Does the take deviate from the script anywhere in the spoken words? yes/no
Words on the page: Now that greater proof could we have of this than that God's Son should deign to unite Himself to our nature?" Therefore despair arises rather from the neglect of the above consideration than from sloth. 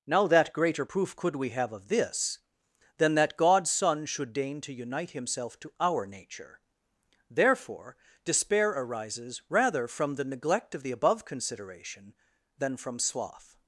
no